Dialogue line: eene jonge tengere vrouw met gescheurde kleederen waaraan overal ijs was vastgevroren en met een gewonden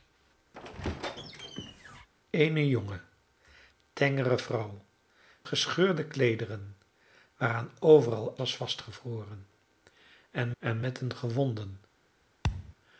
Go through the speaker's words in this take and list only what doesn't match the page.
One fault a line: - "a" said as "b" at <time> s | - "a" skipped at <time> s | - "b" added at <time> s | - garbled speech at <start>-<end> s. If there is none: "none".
- "met" skipped at 4.8 s
- "ijs" skipped at 8.4 s
- "en" added at 10.6 s